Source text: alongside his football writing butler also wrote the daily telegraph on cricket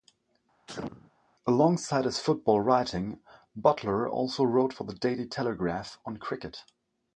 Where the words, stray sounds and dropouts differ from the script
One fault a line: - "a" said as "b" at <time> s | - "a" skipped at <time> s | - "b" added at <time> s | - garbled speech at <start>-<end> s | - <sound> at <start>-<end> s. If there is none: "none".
- sneeze at 0.7-1.1 s
- "for" added at 4.7 s